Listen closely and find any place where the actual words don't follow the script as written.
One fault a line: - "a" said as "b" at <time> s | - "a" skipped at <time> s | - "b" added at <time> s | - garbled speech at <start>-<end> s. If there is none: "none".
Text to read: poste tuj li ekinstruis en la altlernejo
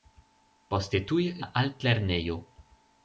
- "li ekinstruis en" skipped at 1.3 s